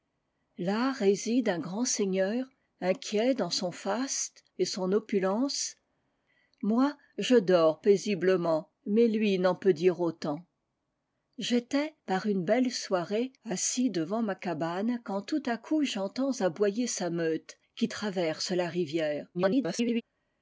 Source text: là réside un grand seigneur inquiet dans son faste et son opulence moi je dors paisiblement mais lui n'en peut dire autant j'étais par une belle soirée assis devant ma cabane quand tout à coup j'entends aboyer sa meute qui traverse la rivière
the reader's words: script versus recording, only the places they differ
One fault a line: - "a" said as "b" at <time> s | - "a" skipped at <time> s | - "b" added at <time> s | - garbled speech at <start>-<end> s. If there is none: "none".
- garbled speech at 19.3-20.0 s